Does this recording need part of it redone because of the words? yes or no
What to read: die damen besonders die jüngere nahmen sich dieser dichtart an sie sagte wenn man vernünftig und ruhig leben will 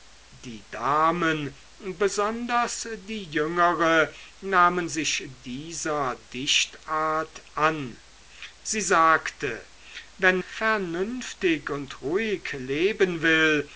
yes